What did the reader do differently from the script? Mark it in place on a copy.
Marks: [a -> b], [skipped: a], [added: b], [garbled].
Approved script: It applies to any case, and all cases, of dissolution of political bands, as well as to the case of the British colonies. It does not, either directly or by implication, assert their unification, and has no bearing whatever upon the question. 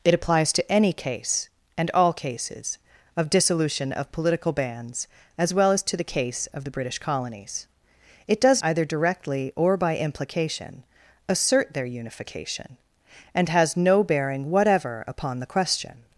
It applies to any case, and all cases, of dissolution of political bands, as well as to the case of the British colonies. It does [skipped: not,] either directly or by implication, assert their unification, and has no bearing whatever upon the question.